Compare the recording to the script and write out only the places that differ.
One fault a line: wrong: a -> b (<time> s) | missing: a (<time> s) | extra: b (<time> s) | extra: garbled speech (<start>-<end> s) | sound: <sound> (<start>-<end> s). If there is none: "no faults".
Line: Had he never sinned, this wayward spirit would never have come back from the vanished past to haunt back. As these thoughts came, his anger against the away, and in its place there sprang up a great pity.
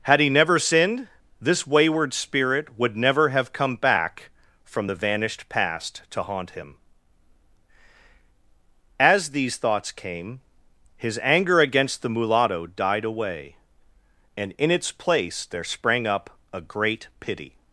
wrong: back -> him (6.5 s)
extra: mulatto died (12.1 s)